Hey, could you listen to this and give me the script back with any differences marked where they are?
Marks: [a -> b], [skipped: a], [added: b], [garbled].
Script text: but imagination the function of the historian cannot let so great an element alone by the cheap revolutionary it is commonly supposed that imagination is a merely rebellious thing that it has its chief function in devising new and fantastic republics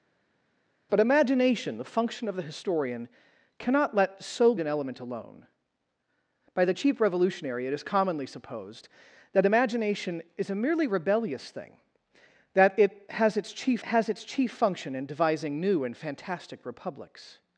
but imagination the function of the historian cannot let so [skipped: great] an element alone by the cheap revolutionary it is commonly supposed that imagination is a merely rebellious thing that it has its chief [added: has its chief] function in devising new and fantastic republics